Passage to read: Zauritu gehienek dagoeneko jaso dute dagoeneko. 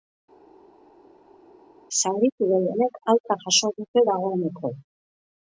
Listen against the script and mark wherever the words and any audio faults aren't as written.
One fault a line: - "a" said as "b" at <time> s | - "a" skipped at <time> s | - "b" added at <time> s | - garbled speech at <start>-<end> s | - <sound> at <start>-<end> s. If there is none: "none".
- "dagoeneko" said as "alta" at 3.1 s